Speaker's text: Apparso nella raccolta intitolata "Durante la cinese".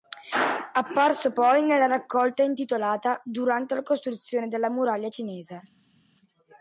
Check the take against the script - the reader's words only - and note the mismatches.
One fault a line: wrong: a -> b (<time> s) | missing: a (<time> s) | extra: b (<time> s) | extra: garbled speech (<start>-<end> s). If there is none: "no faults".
extra: poi (1.3 s)
extra: costruzione della muraglia (3.8 s)